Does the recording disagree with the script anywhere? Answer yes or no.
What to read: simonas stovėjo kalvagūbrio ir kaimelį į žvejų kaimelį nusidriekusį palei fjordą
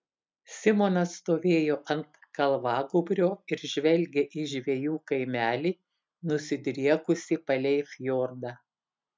yes